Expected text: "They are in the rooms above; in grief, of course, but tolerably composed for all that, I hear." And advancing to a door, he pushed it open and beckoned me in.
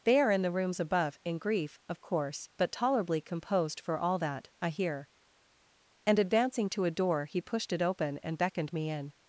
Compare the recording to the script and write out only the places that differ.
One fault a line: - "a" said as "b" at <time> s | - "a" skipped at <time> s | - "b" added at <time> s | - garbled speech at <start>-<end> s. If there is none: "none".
none